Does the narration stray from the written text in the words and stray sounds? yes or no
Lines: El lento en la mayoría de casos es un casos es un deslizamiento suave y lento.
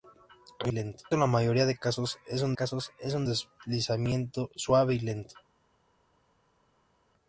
no